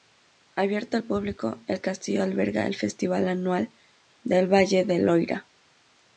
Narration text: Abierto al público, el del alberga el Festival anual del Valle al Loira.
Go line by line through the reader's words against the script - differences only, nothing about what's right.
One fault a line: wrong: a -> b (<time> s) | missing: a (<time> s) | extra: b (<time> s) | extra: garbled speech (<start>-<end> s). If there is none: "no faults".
wrong: del -> castillo (1.8 s)
wrong: al -> del (4.9 s)